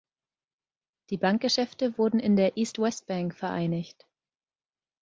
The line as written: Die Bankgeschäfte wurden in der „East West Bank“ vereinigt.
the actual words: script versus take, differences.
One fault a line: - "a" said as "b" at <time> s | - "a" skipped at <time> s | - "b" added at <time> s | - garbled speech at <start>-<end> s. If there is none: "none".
none